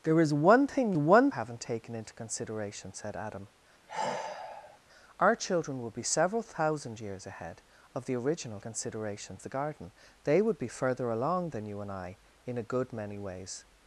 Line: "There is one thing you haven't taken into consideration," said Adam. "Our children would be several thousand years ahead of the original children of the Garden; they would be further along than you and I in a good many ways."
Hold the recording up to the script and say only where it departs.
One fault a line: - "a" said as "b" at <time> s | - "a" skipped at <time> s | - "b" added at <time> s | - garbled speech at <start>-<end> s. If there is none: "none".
- "you" said as "one" at 1.0 s
- "children" said as "consideration" at 8.6 s